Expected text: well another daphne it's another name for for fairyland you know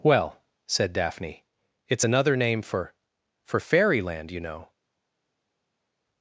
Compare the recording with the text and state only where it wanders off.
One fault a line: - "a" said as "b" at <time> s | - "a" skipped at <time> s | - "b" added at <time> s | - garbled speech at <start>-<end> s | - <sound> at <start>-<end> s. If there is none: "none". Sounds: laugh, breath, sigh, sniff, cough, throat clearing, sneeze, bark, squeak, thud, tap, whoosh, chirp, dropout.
- "another" said as "said" at 0.7 s